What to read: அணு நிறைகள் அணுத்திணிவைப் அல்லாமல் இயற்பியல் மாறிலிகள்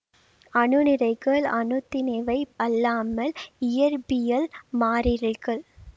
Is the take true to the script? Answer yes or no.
yes